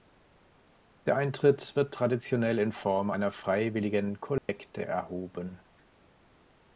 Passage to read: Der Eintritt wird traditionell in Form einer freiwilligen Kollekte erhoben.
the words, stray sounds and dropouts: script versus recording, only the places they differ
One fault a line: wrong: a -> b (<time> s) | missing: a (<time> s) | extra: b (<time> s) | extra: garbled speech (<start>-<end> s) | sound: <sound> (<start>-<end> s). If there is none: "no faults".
sound: dropout (4.4-4.5 s)